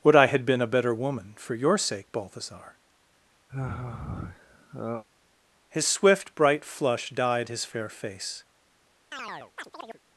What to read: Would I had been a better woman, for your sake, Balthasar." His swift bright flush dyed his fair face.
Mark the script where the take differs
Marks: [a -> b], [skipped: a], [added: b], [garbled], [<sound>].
Would I had been a better woman, for your sake, Balthasar." [sigh] His swift bright flush dyed his fair face. [chirp]